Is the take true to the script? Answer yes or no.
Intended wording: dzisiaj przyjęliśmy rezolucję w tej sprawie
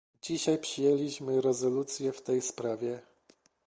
yes